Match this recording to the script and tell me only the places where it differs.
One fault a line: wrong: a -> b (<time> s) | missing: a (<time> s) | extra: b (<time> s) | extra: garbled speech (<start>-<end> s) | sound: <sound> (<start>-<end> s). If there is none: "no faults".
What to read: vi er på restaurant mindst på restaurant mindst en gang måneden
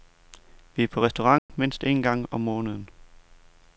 sound: dropout (1.4-1.5 s)
missing: på restaurant mindst (1.8 s)
extra: om (2.3 s)